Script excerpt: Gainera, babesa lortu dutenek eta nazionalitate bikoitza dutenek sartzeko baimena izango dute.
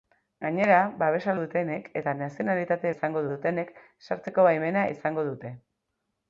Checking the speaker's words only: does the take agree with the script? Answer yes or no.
no